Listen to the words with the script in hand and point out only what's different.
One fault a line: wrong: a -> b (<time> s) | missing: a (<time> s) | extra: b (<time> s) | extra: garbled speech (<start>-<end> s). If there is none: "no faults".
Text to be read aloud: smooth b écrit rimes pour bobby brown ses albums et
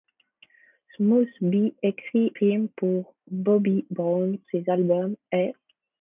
no faults